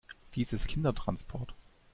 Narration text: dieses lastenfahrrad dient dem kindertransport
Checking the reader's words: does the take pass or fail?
fail